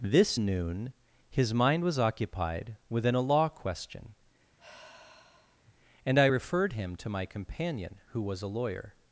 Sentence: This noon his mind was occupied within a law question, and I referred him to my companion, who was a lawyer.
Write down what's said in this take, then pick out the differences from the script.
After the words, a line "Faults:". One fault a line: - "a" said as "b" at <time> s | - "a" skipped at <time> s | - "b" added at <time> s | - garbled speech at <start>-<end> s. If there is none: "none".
This noon his mind was occupied within a law question, and I referred him to my companion, who was a lawyer.
Faults:
none